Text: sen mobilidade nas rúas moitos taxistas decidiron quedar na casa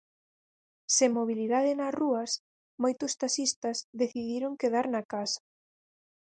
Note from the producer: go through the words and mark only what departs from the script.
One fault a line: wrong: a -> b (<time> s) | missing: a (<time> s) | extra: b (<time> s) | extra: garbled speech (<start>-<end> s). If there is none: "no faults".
no faults